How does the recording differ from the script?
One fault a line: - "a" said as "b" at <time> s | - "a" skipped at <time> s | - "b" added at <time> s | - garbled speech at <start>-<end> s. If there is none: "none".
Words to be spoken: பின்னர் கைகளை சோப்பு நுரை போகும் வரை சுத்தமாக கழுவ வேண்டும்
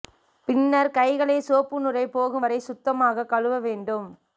none